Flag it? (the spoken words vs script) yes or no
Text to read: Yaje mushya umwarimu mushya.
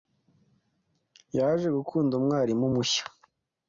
yes